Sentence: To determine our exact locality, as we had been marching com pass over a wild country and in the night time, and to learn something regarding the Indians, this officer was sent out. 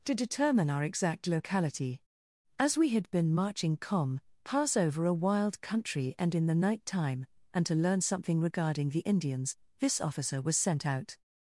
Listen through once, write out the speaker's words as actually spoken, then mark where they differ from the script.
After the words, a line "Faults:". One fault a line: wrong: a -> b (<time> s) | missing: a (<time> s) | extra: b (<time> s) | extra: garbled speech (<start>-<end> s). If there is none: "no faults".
To determine our exact locality, as we had been marching com pass over a wild country and in the night time, and to learn something regarding the Indians, this officer was sent out.
Faults:
no faults